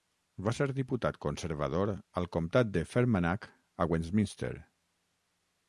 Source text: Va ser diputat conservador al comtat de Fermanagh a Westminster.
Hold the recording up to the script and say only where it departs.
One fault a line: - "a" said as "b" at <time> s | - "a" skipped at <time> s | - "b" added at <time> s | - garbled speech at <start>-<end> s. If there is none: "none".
none